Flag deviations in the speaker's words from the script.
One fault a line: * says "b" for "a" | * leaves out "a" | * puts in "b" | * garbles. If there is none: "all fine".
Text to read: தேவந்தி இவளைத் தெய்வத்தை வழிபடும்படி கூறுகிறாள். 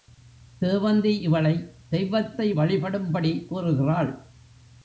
all fine